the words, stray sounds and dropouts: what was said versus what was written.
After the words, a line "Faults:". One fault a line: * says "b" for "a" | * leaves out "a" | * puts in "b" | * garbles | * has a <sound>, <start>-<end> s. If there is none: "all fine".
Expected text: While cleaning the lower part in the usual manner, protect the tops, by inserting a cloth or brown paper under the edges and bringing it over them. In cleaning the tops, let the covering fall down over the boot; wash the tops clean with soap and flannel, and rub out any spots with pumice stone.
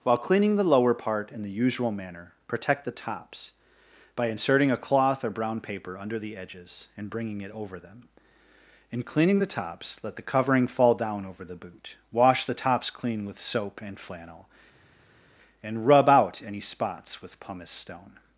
While cleaning the lower part in the usual manner, protect the tops, by inserting a cloth or brown paper under the edges and bringing it over them. In cleaning the tops, let the covering fall down over the boot; wash the tops clean with soap and flannel, and rub out any spots with pumice stone.
Faults:
all fine